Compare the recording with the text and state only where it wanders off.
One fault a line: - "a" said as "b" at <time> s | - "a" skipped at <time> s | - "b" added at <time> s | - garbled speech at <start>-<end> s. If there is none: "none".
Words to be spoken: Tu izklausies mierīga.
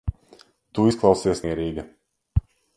none